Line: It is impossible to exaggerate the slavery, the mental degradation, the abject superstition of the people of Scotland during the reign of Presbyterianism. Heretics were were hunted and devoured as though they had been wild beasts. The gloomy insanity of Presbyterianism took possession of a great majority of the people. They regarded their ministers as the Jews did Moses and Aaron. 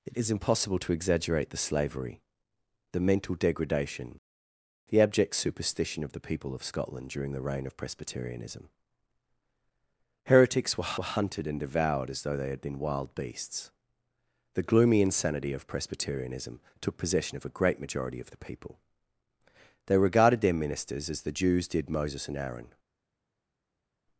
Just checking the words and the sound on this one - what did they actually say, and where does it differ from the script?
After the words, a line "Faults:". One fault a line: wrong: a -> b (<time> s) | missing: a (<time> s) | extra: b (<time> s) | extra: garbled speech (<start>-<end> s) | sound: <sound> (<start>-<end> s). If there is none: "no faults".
It is impossible to exaggerate the slavery, the mental degradation, the abject superstition of the people of Scotland during the reign of Presbyterianism. Heretics were were hunted and devoured as though they had been wild beasts. The gloomy insanity of Presbyterianism took possession of a great majority of the people. They regarded their ministers as the Jews did Moses and Aaron.
Faults:
no faults